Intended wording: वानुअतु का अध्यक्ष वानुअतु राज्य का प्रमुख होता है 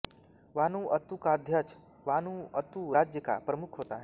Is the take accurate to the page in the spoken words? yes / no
yes